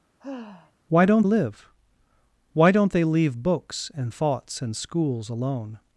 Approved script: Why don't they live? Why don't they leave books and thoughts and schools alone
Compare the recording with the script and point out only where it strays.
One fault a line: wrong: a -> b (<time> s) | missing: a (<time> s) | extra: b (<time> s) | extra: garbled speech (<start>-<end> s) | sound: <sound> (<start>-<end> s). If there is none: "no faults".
sound: sigh (0.2-0.7 s)
missing: they (1.3 s)